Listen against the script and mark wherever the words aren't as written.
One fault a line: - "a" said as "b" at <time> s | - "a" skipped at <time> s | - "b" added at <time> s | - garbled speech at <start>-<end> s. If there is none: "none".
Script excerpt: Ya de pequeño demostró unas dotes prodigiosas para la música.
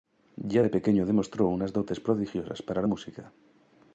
none